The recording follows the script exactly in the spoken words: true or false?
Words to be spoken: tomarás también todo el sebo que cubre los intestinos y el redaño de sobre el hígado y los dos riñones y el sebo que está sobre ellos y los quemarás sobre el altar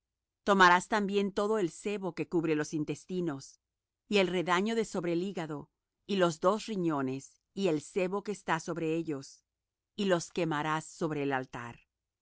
true